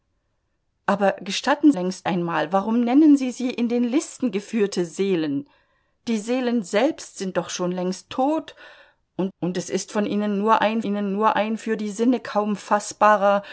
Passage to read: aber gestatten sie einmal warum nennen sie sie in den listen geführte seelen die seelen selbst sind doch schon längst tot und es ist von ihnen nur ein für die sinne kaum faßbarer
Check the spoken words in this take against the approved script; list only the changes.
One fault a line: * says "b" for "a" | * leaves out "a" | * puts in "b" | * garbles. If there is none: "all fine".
* says "längst" for "sie"
* puts in "und"
* puts in "ihnen nur ein"